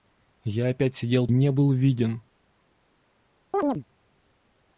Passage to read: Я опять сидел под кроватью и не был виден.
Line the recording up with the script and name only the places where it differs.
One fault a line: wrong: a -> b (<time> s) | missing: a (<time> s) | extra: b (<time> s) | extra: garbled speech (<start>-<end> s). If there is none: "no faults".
missing: под кроватью и (1.3 s)